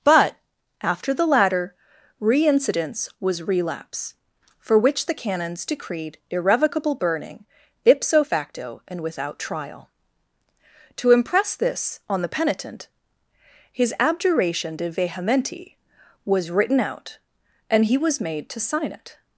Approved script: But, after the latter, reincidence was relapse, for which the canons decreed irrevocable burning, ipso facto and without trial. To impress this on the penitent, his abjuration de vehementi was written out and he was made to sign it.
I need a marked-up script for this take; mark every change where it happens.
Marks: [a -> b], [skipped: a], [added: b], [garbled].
But, after the latter, reincidence was relapse, for which the canons decreed irrevocable burning, ipso facto and without trial. To impress this on the penitent, his abjuration de vehementi was written out and he was made to sign it.